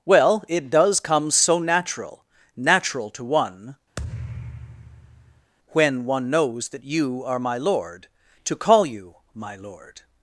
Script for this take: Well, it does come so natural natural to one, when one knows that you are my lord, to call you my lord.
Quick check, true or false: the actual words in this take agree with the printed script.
true